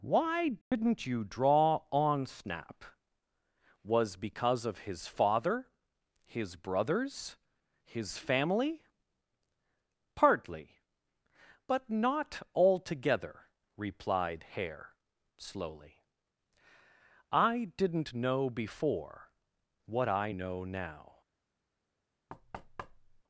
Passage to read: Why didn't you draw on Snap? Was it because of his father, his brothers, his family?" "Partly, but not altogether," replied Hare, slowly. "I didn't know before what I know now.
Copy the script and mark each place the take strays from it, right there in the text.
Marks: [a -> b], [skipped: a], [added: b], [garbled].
Why didn't you draw on Snap? Was [skipped: it] because of his father, his brothers, his family?" "Partly, but not altogether," replied Hare, slowly. "I didn't know before what I know now.